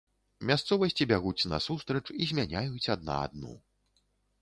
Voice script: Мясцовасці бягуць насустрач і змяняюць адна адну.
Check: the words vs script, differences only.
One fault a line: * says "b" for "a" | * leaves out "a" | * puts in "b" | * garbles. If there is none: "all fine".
all fine